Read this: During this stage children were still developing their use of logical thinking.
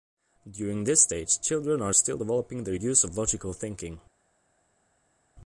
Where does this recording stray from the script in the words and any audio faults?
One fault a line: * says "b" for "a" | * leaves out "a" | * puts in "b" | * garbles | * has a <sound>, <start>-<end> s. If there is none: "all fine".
* says "are" for "were"